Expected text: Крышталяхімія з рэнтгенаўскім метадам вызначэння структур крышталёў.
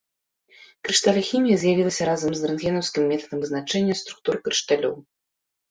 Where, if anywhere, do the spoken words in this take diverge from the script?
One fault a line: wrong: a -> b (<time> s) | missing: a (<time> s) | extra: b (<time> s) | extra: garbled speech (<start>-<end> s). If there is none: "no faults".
extra: з'явілася разам (1.6 s)